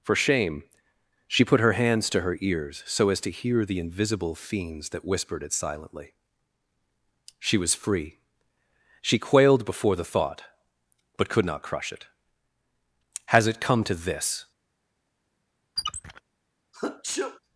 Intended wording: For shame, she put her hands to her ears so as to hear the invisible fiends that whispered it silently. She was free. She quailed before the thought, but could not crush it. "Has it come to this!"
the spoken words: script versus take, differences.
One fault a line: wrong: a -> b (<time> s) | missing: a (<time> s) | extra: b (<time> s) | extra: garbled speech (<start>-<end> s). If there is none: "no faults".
no faults